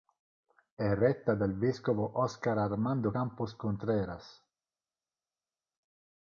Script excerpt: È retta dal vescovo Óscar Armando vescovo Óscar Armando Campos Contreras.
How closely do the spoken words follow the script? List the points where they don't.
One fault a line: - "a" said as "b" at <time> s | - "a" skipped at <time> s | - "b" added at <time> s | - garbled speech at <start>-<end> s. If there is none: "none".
- "vescovo Óscar Armando" skipped at 3.1 s